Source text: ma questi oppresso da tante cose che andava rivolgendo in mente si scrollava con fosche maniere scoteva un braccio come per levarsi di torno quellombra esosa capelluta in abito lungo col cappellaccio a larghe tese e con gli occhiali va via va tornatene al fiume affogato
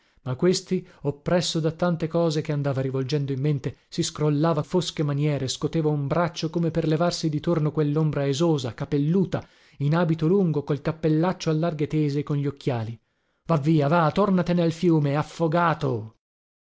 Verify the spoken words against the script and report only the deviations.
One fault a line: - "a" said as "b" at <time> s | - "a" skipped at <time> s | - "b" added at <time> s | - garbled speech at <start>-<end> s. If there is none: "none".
- "con" skipped at 4.6 s